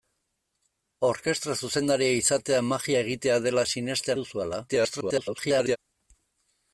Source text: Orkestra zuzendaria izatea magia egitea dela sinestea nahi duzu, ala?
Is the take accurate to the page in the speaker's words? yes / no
no